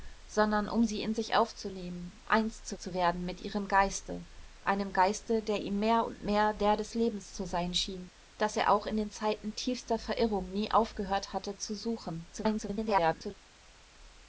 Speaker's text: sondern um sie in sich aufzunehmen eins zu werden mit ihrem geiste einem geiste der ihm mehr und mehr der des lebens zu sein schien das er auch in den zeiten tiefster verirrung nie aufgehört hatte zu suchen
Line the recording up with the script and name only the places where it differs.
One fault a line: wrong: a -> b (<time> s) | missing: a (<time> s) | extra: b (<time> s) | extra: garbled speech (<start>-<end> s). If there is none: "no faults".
extra: zu (2.8 s)
extra: garbled speech (12.3-13.3 s)